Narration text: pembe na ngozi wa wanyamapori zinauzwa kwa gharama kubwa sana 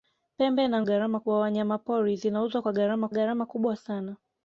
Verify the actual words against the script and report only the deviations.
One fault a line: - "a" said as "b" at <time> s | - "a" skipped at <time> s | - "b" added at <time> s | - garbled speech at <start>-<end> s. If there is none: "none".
- "ngozi" said as "gharama" at 0.8 s
- "gharama" added at 3.1 s